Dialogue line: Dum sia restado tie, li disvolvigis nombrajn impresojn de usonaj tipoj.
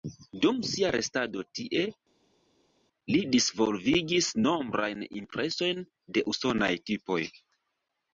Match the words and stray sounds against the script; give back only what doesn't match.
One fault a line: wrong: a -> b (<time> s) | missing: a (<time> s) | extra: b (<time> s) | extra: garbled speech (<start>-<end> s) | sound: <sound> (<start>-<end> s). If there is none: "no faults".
no faults